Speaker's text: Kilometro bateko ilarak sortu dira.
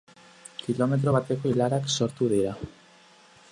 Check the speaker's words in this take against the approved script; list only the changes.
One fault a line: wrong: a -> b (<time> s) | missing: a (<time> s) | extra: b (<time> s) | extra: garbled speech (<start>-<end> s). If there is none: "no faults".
no faults